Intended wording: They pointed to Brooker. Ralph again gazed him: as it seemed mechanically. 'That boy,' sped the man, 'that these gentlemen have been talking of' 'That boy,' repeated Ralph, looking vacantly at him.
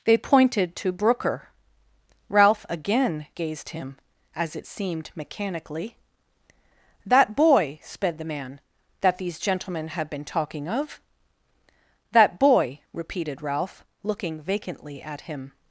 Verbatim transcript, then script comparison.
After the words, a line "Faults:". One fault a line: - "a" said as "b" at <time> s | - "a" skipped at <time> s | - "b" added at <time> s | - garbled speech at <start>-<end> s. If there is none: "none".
They pointed to Brooker. Ralph again gazed him: as it seemed mechanically. 'That boy,' sped the man, 'that these gentlemen have been talking of' 'That boy,' repeated Ralph, looking vacantly at him.
Faults:
none